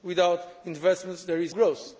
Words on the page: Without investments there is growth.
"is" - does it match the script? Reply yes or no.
yes